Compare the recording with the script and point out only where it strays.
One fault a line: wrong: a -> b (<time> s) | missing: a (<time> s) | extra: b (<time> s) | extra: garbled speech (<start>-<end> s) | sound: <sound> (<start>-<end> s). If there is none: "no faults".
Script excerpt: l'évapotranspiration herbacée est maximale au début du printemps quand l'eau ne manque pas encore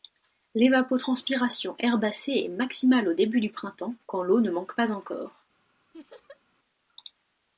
sound: laugh (5.9-6.4 s)